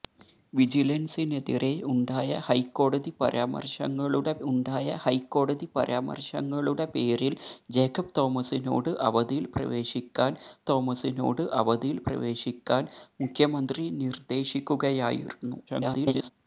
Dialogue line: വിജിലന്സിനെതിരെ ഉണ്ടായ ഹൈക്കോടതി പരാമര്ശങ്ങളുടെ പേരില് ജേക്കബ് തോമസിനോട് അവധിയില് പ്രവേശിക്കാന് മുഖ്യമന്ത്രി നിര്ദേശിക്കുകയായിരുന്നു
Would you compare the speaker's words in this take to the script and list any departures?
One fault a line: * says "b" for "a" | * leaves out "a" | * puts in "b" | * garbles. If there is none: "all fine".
* puts in "ഉണ്ടായ ഹൈക്കോടതി പരാമര്ശങ്ങളുടെ"
* puts in "തോമസിനോട് അവധിയില് പ്രവേശിക്കാന്"
* garbles